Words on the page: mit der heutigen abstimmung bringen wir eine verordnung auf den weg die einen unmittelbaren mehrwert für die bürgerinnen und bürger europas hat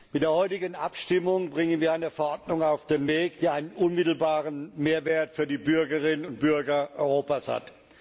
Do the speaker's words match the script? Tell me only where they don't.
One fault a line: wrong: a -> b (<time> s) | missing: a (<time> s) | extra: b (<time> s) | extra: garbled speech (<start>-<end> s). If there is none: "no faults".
no faults